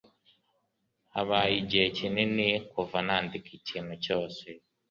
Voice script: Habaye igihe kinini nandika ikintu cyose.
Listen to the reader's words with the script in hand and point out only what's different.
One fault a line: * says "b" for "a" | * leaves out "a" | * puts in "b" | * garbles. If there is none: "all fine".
* puts in "kuva"